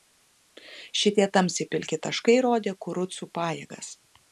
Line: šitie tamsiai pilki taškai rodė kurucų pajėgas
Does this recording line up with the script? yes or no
yes